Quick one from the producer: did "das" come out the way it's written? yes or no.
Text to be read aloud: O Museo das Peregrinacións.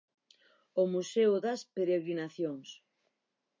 yes